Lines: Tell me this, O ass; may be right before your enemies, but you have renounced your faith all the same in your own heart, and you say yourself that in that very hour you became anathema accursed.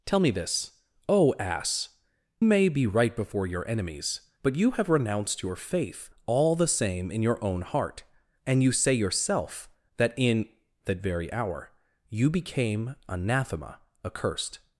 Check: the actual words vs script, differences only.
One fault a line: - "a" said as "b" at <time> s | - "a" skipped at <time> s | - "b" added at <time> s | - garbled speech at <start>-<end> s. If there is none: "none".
none